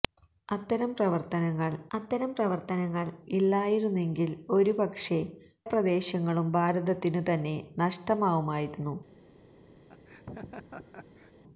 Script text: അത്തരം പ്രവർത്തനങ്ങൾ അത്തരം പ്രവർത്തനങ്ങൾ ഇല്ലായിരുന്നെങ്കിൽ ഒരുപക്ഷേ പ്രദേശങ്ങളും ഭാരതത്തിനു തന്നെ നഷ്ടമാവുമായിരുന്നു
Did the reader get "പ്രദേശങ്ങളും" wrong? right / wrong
right